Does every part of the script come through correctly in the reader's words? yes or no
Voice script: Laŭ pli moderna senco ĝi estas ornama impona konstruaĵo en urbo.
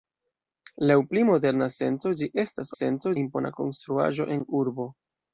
no